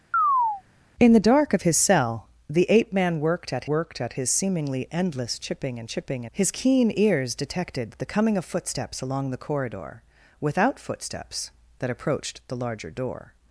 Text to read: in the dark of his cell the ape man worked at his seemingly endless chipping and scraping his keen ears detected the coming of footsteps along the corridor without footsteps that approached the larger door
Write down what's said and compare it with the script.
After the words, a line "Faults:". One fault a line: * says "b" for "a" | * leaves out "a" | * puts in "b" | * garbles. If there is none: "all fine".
in the dark of his cell the ape man worked at worked at his seemingly endless chipping and chipping his keen ears detected the coming of footsteps along the corridor without footsteps that approached the larger door
Faults:
* puts in "worked at"
* says "chipping" for "scraping"